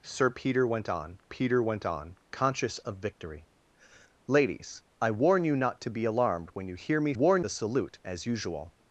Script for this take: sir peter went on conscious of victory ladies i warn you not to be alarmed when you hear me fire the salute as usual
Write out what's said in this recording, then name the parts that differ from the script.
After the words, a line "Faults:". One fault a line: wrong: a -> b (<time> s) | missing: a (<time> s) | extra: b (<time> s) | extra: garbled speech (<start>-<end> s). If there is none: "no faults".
sir peter went on peter went on conscious of victory ladies i warn you not to be alarmed when you hear me warn the salute as usual
Faults:
extra: peter went on (1.3 s)
wrong: fire -> warn (7.1 s)